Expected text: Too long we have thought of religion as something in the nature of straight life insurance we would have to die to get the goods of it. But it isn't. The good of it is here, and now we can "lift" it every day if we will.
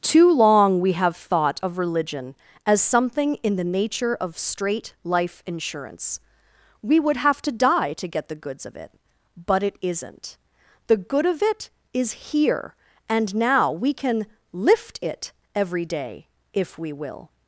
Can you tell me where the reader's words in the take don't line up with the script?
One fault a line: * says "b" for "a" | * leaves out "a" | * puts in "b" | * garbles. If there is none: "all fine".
all fine